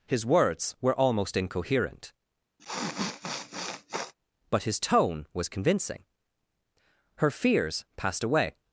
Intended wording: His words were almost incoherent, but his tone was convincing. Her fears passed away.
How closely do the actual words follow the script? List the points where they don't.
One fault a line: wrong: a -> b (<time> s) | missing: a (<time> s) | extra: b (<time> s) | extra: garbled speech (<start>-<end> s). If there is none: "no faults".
no faults